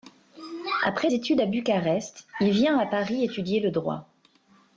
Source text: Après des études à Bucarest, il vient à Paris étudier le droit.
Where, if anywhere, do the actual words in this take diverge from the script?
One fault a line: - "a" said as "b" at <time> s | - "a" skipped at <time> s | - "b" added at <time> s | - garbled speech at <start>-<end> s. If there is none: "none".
- "des" skipped at 1.1 s